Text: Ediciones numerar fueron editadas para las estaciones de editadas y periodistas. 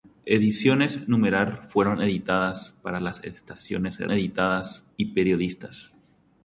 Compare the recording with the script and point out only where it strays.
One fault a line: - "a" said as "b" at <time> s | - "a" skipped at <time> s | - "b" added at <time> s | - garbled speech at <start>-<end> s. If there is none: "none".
none